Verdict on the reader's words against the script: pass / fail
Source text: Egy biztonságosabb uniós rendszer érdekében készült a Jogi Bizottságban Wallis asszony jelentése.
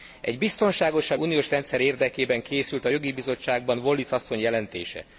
pass